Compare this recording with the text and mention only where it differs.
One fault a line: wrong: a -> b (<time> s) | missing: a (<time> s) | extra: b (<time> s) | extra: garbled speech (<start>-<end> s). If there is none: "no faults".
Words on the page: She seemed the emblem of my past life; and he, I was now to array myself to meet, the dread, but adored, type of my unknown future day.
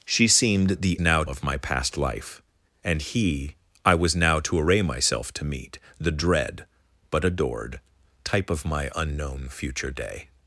wrong: emblem -> now (1.0 s)